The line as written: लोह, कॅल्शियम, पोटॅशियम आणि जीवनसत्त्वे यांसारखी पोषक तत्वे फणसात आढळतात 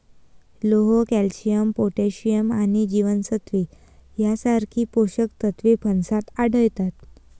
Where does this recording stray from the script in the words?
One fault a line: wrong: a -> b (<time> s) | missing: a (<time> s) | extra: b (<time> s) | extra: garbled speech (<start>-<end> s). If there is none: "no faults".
no faults